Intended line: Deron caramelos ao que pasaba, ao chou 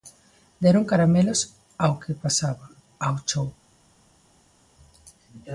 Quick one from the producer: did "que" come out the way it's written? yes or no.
yes